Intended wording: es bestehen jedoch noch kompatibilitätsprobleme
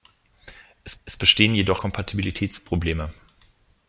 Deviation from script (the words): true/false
true